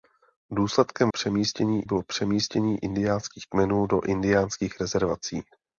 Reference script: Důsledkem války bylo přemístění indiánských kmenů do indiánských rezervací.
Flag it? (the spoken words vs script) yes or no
yes